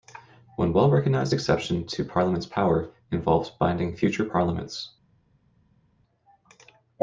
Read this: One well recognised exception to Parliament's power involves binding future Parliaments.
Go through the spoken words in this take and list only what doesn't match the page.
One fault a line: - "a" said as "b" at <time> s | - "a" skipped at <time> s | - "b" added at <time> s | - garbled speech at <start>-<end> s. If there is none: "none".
none